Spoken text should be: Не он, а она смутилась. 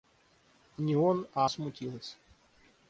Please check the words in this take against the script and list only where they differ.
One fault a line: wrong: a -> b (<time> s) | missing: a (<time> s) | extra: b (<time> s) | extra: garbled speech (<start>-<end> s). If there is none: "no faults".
missing: она (1.4 s)